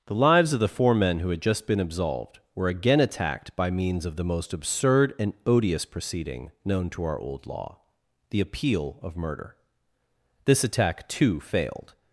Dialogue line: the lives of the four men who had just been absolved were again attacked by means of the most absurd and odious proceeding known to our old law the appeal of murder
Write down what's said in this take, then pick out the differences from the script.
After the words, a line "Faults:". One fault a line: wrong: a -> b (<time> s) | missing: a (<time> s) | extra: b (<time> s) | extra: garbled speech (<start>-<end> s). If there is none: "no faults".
the lives of the four men who had just been absolved were again attacked by means of the most absurd and odious proceeding known to our old law the appeal of murder this attack too failed
Faults:
extra: this attack too failed (10.4 s)